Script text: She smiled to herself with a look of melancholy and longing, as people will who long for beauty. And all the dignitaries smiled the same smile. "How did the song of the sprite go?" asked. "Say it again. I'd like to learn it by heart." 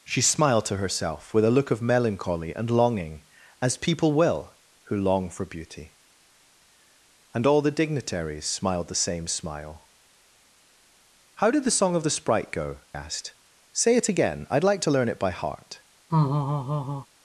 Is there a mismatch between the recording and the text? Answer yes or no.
no